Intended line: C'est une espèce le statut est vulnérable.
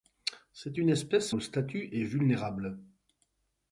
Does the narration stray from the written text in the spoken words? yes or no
no